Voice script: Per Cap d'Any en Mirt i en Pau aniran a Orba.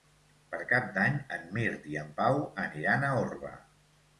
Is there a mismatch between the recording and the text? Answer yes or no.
no